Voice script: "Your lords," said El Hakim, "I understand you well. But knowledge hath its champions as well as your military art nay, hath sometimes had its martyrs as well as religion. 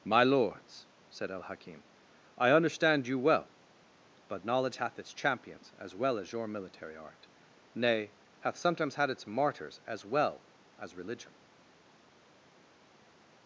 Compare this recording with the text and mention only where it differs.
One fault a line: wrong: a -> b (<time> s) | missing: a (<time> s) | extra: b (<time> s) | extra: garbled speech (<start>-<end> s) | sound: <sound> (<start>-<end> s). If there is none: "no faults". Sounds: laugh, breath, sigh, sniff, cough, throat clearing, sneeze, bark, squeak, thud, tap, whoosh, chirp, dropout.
wrong: Your -> My (0.0 s)